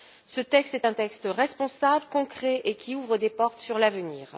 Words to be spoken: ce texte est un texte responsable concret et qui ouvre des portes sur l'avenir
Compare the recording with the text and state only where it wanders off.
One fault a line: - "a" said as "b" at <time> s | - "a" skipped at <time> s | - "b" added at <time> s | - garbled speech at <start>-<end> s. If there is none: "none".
none